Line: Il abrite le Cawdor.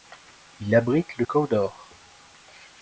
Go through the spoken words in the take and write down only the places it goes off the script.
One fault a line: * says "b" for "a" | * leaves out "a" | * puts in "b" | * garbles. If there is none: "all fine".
all fine